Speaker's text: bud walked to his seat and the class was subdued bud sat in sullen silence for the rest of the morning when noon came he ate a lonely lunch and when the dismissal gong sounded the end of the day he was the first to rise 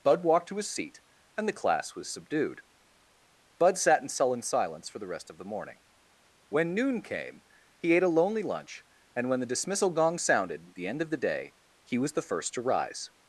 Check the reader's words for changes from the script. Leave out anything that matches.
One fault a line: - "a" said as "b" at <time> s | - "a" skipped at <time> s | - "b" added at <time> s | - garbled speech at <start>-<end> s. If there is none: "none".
none